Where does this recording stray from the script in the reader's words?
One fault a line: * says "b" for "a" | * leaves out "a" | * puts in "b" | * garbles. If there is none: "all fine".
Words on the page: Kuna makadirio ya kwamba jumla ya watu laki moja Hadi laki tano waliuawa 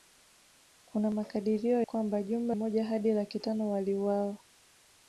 * leaves out "ya"
* leaves out "ya watu laki"